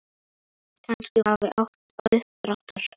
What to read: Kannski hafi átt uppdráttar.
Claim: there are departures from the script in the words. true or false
false